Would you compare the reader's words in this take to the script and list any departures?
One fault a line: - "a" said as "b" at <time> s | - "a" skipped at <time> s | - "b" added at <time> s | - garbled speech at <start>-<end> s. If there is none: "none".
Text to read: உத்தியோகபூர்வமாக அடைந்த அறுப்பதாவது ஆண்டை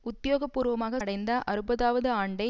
none